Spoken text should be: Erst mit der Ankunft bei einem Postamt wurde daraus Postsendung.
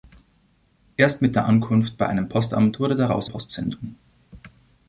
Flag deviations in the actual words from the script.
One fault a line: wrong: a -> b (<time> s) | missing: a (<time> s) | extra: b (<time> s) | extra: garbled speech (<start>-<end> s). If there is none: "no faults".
no faults